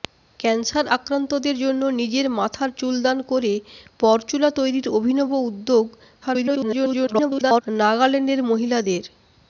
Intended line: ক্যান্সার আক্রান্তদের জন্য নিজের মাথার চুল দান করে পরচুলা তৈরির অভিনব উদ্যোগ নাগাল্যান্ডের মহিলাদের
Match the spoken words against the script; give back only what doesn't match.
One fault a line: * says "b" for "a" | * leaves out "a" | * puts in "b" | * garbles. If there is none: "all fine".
* garbles